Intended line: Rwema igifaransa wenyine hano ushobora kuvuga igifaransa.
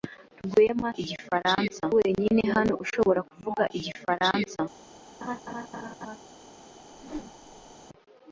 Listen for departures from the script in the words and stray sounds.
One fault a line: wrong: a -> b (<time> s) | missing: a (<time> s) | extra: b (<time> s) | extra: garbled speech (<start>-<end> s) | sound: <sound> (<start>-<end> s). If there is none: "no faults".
sound: laugh (5.2-6.2 s)
sound: whoosh (6.9-7.8 s)